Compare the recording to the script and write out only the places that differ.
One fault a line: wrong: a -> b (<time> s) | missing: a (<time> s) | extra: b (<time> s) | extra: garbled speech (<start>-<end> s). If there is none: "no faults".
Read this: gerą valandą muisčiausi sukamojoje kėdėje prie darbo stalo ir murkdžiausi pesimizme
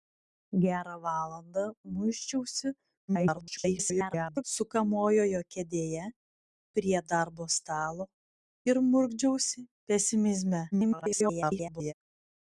extra: garbled speech (3.1-4.4 s)
extra: garbled speech (10.7-11.9 s)